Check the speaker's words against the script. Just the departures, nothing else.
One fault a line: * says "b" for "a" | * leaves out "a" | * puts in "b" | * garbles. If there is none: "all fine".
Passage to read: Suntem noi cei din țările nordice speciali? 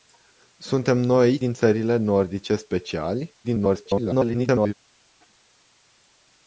* leaves out "cei"
* garbles